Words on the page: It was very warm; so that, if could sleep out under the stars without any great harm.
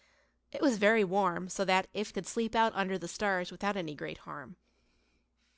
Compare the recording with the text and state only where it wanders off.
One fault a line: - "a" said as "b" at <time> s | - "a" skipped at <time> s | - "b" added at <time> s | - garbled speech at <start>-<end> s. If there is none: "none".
none